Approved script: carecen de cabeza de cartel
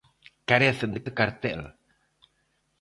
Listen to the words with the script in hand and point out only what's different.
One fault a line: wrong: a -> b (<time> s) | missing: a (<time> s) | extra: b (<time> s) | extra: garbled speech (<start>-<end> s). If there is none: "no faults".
missing: cabeza (1.0 s)